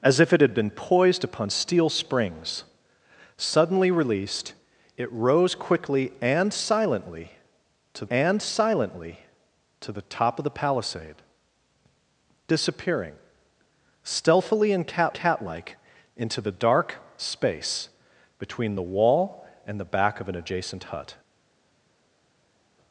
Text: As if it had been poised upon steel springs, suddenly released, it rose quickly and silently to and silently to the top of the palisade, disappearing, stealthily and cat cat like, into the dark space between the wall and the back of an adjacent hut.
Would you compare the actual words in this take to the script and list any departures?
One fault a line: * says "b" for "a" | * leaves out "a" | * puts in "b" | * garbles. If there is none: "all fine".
all fine